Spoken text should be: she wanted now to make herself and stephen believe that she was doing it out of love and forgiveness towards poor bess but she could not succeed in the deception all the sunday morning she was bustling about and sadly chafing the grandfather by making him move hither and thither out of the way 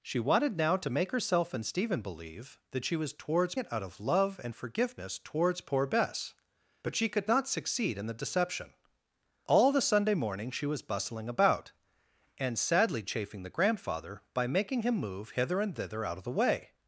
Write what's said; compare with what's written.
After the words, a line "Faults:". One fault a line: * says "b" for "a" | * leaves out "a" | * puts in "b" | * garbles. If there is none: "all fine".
she wanted now to make herself and stephen believe that she was towards it out of love and forgiveness towards poor bess but she could not succeed in the deception all the sunday morning she was bustling about and sadly chafing the grandfather by making him move hither and thither out of the way
Faults:
* says "towards" for "doing"